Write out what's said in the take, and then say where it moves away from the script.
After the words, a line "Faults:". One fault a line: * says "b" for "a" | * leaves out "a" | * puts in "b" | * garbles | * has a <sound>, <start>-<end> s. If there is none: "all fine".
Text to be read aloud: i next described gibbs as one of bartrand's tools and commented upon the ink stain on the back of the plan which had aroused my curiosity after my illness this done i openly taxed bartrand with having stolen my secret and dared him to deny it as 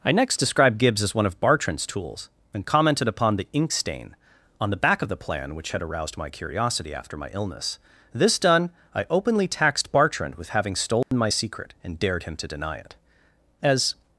i next described gibbs as one of bartrand's tools and commented upon the ink stain on the back of the plan which had aroused my curiosity after my illness this done i openly taxed bartrand with having stolen my secret and dared him to deny it as
Faults:
* has a dropout, 11.0-11.1 s